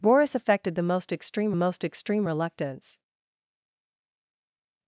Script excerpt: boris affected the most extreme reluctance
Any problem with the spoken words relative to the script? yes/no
yes